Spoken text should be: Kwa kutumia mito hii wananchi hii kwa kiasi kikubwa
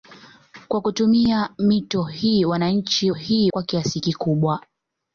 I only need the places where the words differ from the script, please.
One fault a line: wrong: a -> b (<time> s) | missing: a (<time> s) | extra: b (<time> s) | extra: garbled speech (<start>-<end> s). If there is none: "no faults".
no faults